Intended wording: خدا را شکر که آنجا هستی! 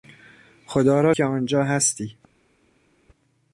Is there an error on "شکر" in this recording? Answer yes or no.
yes